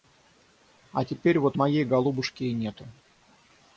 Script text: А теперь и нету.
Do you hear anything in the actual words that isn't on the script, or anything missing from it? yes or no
yes